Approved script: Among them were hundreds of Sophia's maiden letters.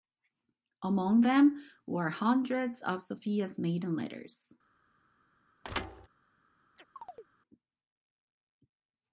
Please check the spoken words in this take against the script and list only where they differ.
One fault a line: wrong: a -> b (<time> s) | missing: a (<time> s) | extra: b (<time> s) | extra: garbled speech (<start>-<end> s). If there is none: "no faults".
no faults